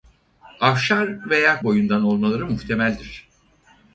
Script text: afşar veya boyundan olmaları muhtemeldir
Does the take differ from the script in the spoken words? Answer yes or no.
no